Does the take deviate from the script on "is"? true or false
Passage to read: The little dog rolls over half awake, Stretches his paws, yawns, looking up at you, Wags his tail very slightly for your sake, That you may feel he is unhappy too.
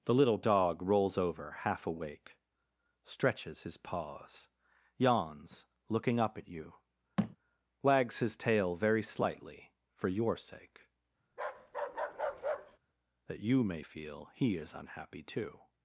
false